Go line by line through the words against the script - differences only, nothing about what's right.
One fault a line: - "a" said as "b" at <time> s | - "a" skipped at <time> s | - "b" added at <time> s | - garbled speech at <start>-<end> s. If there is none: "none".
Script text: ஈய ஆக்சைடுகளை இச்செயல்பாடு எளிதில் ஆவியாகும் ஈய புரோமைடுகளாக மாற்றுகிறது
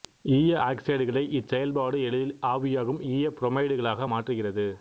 none